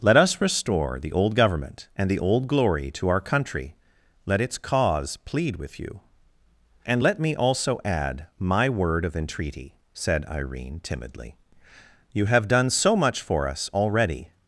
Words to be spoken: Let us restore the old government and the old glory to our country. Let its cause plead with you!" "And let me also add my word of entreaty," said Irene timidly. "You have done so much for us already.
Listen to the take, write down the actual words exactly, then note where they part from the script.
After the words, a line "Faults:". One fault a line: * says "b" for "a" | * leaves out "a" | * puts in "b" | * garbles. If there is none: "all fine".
Let us restore the old government and the old glory to our country. Let its cause plead with you!" "And let me also add my word of entreaty," said Irene timidly. "You have done so much for us already.
Faults:
all fine